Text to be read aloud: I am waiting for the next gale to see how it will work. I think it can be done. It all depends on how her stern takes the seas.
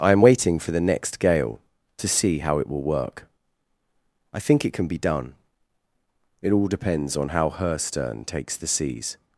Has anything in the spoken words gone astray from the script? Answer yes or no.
no